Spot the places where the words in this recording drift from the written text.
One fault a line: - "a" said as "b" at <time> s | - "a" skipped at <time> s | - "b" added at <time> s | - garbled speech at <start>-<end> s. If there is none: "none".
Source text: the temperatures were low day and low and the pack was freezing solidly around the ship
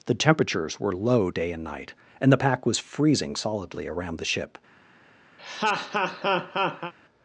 - "low" said as "night" at 1.6 s